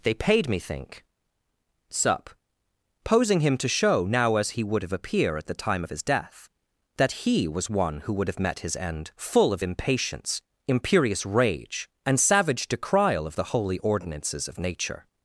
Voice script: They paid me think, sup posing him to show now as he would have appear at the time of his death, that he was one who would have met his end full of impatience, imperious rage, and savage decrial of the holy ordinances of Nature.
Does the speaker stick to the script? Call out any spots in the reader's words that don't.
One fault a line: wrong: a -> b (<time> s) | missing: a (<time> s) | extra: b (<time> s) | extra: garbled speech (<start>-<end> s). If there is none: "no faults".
no faults